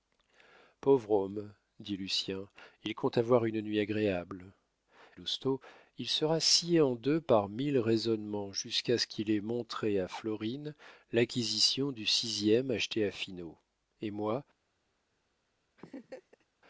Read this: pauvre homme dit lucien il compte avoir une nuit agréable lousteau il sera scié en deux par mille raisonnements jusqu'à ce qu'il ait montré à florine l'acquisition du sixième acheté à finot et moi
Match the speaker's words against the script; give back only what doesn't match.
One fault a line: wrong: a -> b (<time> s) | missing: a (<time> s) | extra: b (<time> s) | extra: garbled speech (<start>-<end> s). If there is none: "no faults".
no faults